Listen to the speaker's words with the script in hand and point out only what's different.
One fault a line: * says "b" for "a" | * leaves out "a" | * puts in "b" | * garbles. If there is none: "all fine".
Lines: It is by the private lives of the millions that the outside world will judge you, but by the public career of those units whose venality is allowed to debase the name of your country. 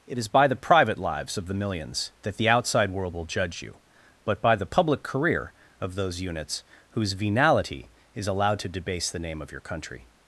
all fine